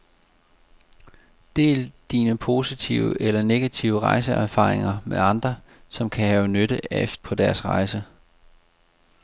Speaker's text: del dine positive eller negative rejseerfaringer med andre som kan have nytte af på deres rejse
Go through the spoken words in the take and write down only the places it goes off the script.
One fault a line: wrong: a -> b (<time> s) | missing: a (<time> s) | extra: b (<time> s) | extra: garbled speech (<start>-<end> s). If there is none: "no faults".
no faults